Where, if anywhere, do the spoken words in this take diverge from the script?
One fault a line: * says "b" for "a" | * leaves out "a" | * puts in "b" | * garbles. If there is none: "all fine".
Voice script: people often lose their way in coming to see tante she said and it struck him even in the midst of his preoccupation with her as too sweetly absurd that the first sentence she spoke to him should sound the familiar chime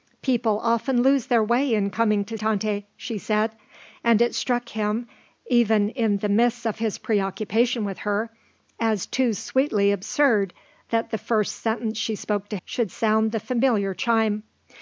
* leaves out "see"
* leaves out "him"